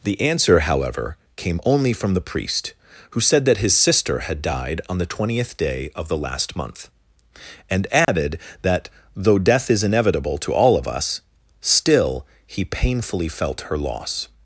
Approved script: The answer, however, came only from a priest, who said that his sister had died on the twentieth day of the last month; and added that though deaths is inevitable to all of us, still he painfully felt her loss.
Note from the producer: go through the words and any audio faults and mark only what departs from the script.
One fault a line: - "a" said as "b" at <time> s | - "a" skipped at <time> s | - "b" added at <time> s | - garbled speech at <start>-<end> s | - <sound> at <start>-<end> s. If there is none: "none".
- "a" said as "the" at 2.1 s
- dropout at 8.0-8.1 s
- "deaths" said as "death" at 9.4 s